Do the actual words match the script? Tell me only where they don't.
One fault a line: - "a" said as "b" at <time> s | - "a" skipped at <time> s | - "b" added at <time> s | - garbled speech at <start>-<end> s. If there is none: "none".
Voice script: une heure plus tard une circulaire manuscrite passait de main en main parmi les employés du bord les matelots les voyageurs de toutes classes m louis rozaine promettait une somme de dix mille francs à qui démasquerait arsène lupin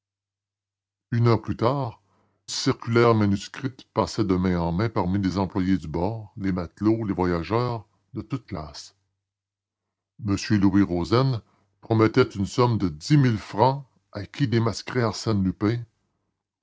- "une" skipped at 2.0 s